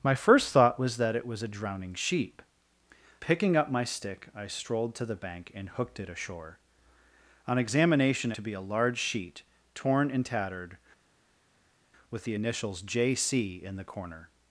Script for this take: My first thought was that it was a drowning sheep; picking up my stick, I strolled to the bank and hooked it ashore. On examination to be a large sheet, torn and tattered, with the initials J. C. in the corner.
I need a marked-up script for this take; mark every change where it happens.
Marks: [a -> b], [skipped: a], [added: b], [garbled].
My first thought was that it was a drowning sheep; picking up my stick, I strolled to the bank and hooked it ashore. On examination to be a large sheet, torn and tattered, with the initials J. C. in the corner.